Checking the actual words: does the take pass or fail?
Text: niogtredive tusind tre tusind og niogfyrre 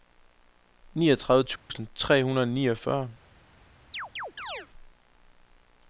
fail